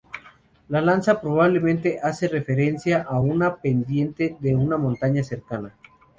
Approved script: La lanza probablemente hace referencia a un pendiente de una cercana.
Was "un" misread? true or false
true